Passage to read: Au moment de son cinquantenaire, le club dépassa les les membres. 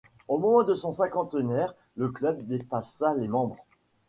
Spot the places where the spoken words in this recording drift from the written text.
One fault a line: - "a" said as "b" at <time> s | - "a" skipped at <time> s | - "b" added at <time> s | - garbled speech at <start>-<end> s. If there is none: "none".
- "les" skipped at 3.3 s